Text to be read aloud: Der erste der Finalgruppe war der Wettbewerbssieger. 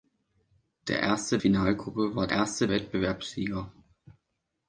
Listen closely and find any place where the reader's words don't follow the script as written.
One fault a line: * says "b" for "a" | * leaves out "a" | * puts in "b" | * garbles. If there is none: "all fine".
* leaves out "der"
* says "erste" for "der"